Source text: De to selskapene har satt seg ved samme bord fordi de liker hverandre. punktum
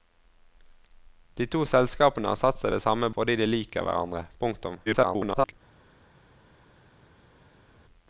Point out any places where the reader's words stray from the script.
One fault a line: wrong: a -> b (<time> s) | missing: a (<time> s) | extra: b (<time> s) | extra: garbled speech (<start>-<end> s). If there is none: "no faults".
missing: bord (3.1 s)
extra: garbled speech (4.9-5.5 s)